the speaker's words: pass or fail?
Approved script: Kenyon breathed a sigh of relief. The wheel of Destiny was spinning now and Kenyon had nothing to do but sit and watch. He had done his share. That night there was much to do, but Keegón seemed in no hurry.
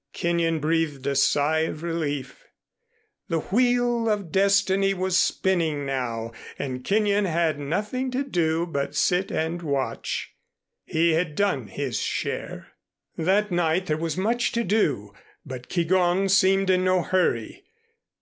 pass